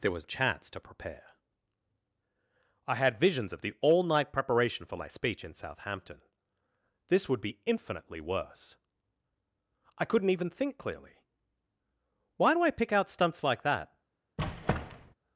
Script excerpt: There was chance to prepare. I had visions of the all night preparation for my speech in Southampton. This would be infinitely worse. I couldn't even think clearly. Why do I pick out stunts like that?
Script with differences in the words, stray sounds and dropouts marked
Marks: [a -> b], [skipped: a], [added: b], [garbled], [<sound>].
There was chance to prepare. I had visions of the all night preparation for my speech in Southampton. This would be infinitely worse. I couldn't even think clearly. Why do I pick out stunts like that? [squeak]